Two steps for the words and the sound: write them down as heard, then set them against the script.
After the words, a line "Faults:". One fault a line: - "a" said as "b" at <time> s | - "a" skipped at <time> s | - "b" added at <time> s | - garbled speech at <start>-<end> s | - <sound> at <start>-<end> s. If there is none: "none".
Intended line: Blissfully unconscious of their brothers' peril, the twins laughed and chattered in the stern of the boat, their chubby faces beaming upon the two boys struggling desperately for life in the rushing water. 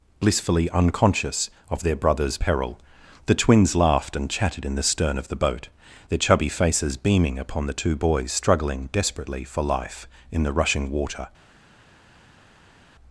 Blissfully unconscious of their brothers' peril, the twins laughed and chatted in the stern of the boat, their chubby faces beaming upon the two boys struggling desperately for life in the rushing water.
Faults:
- "chattered" said as "chatted" at 4.3 s